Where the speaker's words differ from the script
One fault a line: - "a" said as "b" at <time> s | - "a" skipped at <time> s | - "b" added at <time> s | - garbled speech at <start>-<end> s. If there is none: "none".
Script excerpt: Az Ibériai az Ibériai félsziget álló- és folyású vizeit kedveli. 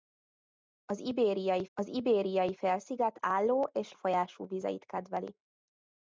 none